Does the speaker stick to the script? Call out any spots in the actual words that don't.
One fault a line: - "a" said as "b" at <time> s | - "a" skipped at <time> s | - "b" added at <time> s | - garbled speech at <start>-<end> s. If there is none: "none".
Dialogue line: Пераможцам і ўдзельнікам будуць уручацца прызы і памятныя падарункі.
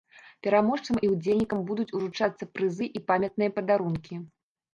none